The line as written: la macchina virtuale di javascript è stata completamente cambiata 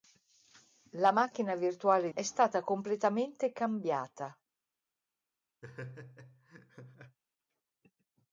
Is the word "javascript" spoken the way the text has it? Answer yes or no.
no